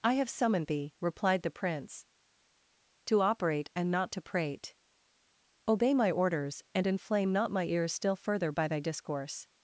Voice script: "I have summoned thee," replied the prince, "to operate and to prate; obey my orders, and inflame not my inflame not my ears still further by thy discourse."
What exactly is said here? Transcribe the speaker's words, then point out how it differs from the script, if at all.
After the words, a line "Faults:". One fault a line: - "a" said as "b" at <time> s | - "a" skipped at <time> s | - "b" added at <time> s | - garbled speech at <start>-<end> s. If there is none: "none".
"I have summoned thee," replied the prince, "to operate and not to prate; obey my orders, and inflame not my ears still further by thy discourse."
Faults:
- "not" added at 3.9 s
- "inflame not my" skipped at 7.7 s